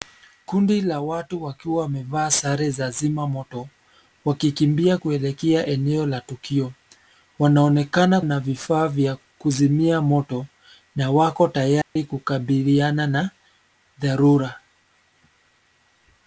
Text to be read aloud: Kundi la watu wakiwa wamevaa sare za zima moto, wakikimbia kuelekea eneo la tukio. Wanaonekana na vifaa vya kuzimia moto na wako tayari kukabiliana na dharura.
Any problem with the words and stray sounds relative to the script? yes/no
yes